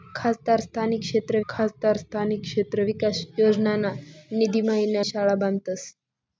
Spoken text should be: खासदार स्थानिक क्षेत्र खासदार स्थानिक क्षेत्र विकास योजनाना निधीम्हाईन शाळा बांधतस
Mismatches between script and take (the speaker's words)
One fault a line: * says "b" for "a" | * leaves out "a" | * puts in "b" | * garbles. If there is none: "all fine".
all fine